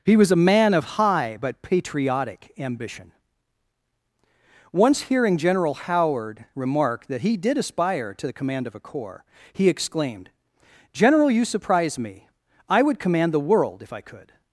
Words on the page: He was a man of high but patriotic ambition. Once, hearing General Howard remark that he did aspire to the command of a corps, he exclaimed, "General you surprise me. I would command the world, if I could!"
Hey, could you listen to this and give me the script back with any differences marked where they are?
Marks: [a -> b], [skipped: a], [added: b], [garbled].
He was a man of high but patriotic ambition. Once, hearing General Howard remark that he did aspire to the command of a corps, he exclaimed, "General you surprise me. I would command the world, if I could!"